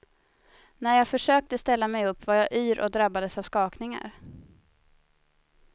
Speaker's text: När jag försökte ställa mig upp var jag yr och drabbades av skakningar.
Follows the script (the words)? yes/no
yes